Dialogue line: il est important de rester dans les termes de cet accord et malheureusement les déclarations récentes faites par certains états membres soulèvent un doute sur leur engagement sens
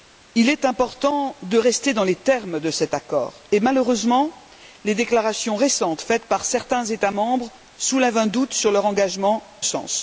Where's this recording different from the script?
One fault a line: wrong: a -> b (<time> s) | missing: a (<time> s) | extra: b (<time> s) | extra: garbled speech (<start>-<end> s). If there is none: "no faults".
no faults